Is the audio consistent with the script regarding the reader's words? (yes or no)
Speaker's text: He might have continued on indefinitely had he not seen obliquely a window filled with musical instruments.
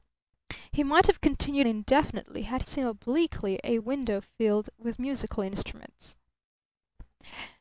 no